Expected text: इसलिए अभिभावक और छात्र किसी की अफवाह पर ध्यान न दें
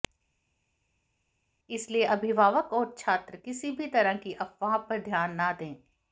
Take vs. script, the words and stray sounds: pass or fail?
fail